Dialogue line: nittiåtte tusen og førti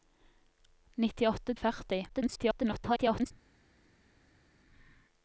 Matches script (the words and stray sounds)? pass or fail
fail